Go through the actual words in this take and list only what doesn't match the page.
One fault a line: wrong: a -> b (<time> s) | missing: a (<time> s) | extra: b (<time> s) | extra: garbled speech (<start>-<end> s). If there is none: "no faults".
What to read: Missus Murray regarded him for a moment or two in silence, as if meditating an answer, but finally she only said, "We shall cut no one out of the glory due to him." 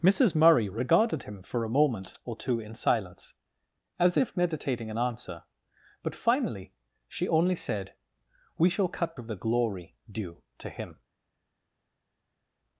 missing: no one out (9.2 s)